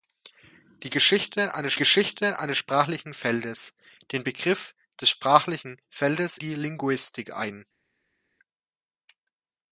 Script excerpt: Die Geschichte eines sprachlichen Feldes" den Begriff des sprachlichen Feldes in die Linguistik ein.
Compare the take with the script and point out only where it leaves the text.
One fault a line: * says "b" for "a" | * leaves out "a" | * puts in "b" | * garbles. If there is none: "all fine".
* puts in "Geschichte eines"
* leaves out "in"